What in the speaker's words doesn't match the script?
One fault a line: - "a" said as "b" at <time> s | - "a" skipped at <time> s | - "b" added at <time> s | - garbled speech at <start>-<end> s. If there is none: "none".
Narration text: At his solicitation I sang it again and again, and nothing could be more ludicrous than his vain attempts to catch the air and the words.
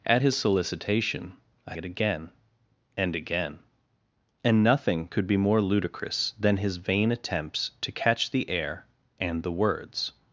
- "sang" skipped at 1.7 s